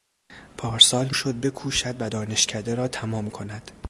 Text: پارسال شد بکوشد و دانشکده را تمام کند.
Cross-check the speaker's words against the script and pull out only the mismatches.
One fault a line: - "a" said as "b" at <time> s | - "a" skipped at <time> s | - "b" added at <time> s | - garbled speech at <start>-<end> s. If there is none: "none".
none